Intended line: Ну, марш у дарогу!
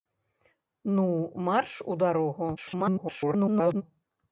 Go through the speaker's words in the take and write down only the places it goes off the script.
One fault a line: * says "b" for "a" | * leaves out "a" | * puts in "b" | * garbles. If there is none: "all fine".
* garbles